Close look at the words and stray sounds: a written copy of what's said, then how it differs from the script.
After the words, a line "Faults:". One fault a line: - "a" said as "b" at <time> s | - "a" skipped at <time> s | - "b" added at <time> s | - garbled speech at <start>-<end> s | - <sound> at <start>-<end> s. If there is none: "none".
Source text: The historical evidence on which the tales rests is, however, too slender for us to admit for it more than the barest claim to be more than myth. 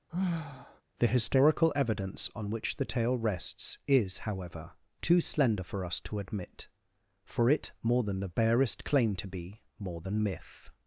The historical evidence on which the tale rests is, however, too slender for us to admit for it more than the barest claim to be more than myth.
Faults:
- sigh at 0.1-0.8 s
- "tales" said as "tale" at 2.8 s